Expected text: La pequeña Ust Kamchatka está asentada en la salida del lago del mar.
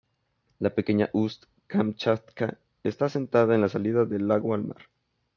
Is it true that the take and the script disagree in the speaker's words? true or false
true